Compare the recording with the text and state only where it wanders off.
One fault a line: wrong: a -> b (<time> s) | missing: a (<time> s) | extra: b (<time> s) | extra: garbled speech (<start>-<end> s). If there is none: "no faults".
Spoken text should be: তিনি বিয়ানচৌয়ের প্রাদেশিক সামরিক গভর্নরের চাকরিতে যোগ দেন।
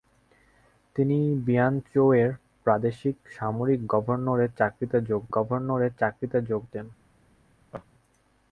extra: গভর্নরের চাকরিতে যোগ (5.3 s)